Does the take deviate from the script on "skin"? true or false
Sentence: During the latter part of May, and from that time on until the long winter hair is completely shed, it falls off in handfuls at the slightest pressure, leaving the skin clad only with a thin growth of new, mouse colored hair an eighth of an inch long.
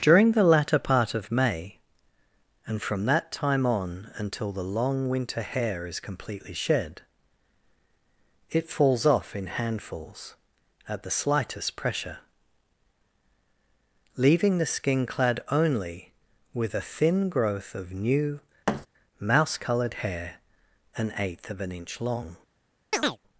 false